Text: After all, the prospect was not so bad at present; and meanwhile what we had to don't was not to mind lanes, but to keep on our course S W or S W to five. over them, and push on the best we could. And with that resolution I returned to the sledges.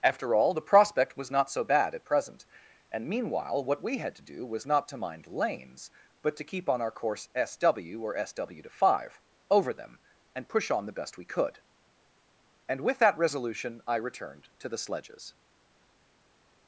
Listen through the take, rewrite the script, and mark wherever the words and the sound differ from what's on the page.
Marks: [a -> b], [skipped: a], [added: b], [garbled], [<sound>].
After all, the prospect was not so bad at present; and meanwhile what we had to [don't -> do] was not to mind lanes, but to keep on our course S W or S W to five. over them, and push on the best we could. And with that resolution I returned to the sledges.